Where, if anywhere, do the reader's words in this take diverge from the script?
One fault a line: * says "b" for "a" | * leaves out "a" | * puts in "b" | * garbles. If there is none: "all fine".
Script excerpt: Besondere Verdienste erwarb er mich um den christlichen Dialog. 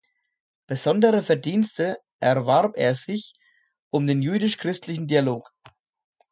* says "sich" for "mich"
* puts in "jüdisch"